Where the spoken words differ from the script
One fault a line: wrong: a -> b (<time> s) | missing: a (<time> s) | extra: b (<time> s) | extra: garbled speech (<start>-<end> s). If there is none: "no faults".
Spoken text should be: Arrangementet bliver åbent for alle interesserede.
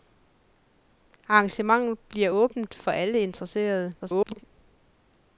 extra: garbled speech (4.0-4.4 s)